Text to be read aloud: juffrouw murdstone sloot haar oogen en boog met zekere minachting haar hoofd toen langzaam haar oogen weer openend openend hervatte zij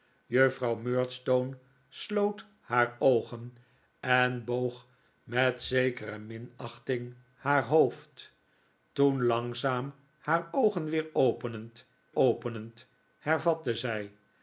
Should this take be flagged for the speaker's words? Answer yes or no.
no